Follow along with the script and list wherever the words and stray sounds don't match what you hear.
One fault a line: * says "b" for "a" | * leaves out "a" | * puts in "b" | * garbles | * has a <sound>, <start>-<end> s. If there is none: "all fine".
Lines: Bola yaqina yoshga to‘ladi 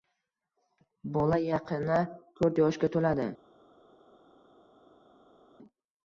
* puts in "to‘rt"